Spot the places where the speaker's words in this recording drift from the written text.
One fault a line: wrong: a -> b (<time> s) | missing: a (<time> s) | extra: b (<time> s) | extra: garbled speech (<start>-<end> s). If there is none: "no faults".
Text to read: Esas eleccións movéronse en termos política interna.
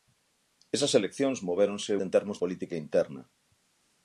no faults